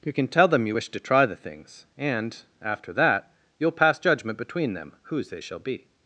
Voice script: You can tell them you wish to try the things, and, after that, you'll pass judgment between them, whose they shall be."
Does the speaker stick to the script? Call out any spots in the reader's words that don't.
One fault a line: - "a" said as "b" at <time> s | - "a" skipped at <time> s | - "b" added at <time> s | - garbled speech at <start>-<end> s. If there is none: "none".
none